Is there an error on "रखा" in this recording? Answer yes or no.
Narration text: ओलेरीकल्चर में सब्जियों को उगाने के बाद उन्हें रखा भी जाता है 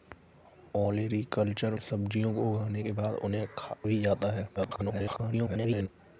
yes